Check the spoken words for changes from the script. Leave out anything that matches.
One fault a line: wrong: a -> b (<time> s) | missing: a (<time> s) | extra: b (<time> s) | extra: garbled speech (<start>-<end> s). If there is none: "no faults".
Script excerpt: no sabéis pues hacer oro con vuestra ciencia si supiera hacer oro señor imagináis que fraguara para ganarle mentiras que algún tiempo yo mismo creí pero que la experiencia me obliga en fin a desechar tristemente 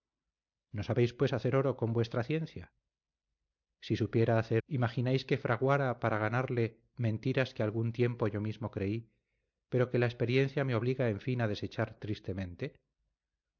missing: oro señor (4.6 s)